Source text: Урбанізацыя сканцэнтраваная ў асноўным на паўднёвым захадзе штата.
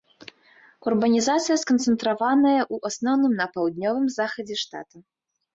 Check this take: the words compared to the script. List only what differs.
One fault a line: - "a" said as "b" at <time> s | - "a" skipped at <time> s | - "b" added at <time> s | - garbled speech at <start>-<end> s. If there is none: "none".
none